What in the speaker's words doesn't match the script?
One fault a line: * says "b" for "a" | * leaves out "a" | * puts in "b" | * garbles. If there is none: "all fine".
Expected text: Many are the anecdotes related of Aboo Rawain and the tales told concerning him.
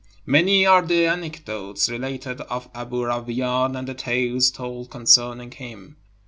all fine